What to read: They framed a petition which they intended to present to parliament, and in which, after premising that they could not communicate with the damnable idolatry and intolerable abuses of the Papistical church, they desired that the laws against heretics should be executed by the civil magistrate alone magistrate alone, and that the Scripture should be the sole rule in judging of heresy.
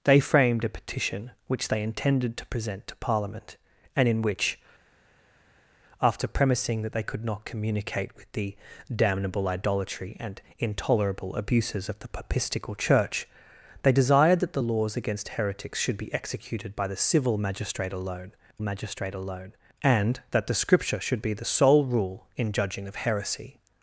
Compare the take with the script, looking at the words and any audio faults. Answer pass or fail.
pass